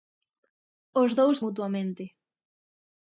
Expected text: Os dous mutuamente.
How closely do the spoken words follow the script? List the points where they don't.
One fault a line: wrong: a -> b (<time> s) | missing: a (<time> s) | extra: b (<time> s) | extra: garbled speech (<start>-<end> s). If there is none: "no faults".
no faults